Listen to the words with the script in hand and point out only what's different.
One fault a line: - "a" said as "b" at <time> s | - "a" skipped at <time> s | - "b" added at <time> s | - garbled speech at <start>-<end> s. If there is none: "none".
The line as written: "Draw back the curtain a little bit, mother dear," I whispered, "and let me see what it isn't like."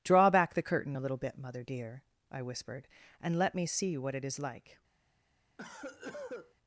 - "isn't" said as "is" at 4.2 s